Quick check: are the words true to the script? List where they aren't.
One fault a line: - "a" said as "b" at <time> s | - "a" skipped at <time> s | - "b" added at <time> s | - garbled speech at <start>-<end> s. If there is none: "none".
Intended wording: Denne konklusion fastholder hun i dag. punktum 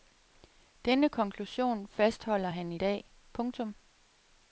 - "hun" said as "han" at 2.5 s